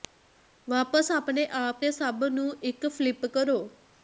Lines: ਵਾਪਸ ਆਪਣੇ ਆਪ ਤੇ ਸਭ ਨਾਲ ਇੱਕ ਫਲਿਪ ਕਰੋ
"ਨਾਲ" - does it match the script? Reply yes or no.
no